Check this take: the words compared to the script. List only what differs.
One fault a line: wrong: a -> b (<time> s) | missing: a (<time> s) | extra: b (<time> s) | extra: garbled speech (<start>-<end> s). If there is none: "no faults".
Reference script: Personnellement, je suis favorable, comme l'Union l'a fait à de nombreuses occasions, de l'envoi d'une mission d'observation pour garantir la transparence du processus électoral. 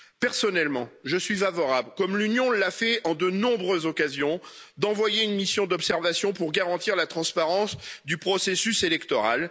wrong: de -> à (4.4 s)